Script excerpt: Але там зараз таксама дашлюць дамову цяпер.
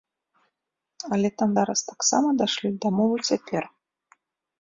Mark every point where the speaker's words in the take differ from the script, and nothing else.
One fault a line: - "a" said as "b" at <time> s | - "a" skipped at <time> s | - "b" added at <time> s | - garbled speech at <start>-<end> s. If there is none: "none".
none